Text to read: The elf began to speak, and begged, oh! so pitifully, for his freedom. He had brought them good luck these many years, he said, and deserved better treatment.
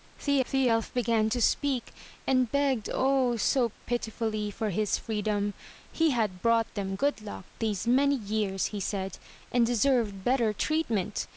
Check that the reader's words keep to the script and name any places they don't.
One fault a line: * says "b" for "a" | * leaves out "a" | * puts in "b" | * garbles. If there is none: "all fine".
* puts in "the"